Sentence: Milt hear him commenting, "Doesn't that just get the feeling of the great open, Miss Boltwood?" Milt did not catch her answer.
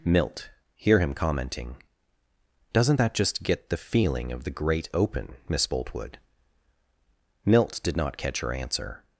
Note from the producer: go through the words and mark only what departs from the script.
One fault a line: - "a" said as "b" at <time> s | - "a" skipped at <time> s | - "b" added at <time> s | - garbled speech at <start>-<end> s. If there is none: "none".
none